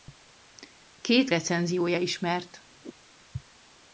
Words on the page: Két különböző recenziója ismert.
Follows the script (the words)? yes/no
no